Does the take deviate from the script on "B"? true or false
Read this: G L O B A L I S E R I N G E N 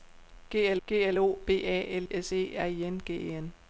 false